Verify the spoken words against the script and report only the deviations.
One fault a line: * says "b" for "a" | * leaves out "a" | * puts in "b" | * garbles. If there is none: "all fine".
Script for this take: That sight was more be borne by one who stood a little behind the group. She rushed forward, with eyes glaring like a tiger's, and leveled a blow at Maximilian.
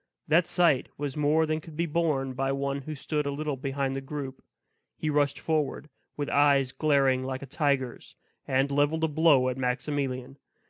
* puts in "than could"
* says "He" for "She"